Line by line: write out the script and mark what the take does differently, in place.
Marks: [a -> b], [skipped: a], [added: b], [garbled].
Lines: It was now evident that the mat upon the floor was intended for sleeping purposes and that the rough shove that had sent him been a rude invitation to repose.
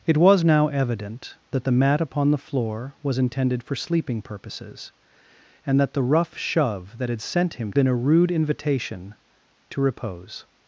It was now evident that the mat upon the floor was intended for sleeping purposes and that the rough shove that had sent him been a rude invitation to repose.